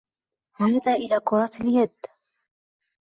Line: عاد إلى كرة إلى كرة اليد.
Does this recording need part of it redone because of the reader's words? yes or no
yes